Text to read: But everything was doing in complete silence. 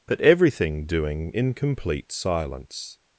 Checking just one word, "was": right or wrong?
wrong